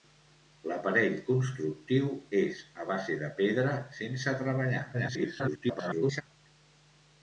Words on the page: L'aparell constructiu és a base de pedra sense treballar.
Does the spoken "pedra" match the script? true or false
true